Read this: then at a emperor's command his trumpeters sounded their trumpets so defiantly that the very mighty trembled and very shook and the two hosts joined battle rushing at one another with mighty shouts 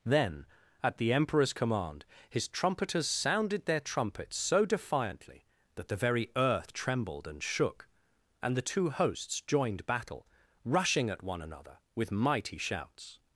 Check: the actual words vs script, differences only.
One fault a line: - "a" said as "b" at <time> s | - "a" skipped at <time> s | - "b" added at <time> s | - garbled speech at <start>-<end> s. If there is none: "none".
- "a" said as "the" at 1.0 s
- "mighty" said as "earth" at 6.3 s
- "very" skipped at 7.4 s